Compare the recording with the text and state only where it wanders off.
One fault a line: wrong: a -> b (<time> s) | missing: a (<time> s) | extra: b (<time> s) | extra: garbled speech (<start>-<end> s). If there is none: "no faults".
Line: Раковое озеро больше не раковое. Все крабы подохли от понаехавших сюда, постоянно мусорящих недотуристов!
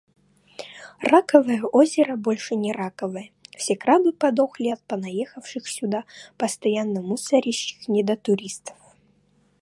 no faults